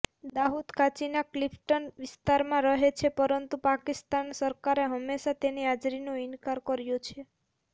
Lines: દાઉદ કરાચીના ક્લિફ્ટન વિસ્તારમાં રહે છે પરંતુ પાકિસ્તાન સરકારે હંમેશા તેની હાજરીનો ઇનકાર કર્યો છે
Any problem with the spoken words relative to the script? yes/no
no